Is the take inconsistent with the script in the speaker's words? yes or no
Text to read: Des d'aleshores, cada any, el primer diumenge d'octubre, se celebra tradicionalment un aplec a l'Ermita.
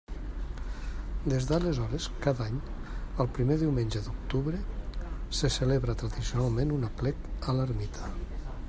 no